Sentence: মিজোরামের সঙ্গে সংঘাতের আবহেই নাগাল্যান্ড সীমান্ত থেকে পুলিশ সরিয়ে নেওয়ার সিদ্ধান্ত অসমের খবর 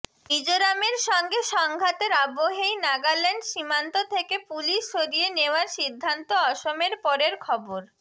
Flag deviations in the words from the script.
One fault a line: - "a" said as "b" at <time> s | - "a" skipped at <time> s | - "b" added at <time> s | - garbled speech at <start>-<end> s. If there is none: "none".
- "পরের" added at 7.0 s